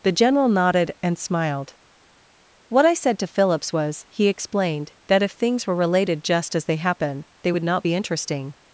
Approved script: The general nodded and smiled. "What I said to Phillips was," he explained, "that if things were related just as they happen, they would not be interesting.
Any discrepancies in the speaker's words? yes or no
no